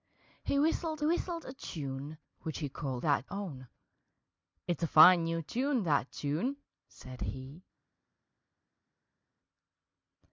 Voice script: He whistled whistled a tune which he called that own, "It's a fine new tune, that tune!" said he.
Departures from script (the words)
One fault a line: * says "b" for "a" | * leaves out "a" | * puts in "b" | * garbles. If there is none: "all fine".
all fine